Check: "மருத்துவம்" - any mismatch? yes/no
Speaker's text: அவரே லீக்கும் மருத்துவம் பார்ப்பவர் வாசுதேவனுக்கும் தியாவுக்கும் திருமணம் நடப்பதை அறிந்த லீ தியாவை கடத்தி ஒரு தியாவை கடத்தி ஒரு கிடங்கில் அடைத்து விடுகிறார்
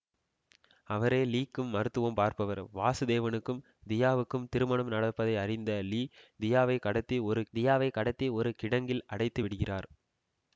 no